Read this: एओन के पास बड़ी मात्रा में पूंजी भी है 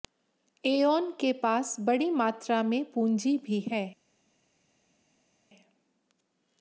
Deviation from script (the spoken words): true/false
false